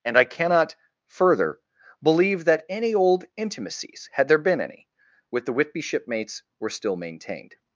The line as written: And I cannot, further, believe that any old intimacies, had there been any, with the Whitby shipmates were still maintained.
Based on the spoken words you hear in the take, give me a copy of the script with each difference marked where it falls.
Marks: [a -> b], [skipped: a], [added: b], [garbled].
And I cannot, further, believe that any old intimacies, had there been any, with the Whitby shipmates were still maintained.